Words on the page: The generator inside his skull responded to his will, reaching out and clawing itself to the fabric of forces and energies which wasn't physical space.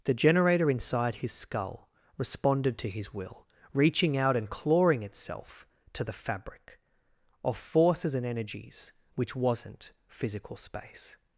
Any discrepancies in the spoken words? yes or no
no